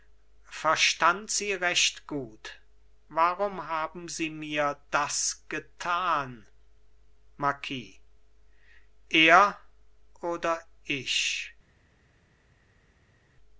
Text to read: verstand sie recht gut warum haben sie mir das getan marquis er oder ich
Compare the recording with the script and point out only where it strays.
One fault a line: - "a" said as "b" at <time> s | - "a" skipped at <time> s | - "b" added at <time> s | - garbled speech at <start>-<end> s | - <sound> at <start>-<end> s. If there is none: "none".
none